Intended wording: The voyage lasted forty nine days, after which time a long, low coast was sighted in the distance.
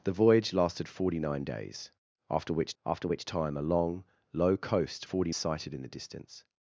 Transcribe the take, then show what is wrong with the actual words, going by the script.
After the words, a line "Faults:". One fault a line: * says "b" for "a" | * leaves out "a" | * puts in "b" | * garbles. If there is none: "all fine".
The voyage lasted forty nine days, after which after which time a long, low coast forty sighted in the distance.
Faults:
* puts in "after which"
* says "forty" for "was"